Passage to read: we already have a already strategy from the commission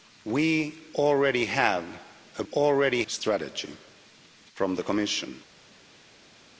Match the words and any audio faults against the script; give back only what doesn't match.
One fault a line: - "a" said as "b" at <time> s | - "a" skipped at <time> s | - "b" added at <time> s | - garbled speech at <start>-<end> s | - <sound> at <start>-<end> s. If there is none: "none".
none